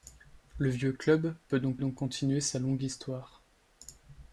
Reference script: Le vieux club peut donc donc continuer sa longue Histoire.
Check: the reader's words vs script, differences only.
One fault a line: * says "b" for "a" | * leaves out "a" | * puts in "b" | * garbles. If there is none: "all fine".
all fine